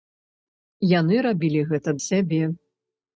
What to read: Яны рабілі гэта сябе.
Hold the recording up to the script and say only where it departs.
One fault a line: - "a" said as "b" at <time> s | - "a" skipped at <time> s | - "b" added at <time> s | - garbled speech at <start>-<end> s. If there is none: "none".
none